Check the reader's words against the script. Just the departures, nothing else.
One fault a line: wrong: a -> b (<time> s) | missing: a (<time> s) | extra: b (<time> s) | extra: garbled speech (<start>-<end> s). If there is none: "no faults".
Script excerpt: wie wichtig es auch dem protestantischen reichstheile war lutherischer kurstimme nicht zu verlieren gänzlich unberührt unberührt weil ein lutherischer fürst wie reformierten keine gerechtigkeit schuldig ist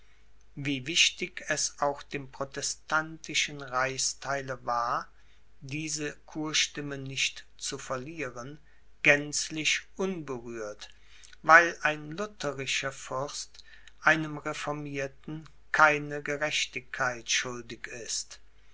wrong: lutherischer -> diese (5.6 s)
missing: unberührt (10.9 s)
wrong: wie -> einem (14.0 s)